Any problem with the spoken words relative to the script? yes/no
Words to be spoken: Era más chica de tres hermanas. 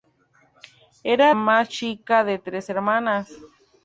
no